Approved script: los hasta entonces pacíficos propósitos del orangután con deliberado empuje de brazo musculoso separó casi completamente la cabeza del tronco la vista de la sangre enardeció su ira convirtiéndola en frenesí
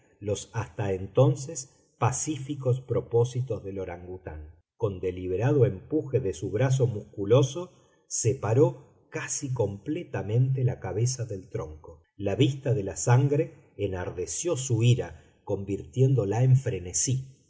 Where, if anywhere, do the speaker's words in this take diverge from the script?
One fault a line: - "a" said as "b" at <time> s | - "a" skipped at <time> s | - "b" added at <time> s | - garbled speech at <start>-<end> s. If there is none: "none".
- "su" added at 6.3 s